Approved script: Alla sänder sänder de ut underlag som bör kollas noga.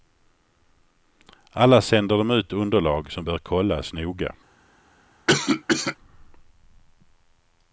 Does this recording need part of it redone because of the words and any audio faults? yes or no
yes